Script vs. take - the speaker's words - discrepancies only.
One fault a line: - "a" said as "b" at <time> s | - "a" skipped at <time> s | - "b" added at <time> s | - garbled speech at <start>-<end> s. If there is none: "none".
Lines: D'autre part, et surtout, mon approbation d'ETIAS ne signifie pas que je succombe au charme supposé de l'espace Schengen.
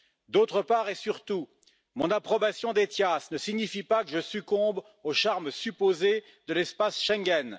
none